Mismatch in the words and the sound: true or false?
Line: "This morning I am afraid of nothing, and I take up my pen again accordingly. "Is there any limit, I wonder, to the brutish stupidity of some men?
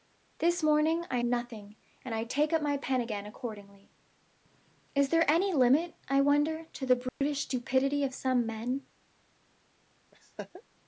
true